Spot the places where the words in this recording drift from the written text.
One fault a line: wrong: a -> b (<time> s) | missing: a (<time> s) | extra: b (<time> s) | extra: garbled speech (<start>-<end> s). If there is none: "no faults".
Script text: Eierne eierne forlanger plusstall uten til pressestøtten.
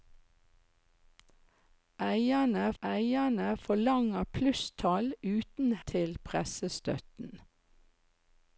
no faults